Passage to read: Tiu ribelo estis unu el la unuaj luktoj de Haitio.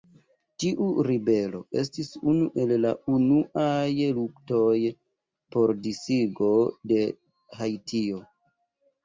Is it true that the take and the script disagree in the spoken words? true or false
true